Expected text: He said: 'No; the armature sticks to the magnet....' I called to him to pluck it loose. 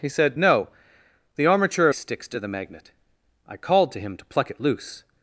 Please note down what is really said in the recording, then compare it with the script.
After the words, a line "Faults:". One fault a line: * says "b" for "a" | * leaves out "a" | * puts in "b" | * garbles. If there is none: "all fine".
He said: 'No; the armature sticks to the magnet....' I called to him to pluck it loose.
Faults:
all fine